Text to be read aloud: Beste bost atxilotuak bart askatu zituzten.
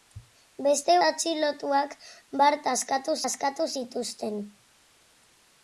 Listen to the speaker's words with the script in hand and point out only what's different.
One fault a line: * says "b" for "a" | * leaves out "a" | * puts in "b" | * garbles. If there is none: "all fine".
* leaves out "bost"
* puts in "askatu"